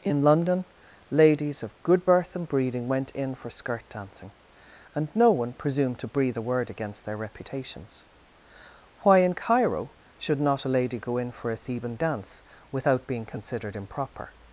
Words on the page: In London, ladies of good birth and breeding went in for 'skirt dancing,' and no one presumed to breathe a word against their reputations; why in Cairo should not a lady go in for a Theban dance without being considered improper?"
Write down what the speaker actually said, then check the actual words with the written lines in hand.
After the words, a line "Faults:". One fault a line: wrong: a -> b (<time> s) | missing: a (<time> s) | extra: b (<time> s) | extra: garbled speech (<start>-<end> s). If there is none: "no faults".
In London, ladies of good birth and breeding went in for 'skirt dancing,' and no one presumed to breathe a word against their reputations; why in Cairo should not a lady go in for a Theban dance without being considered improper?"
Faults:
no faults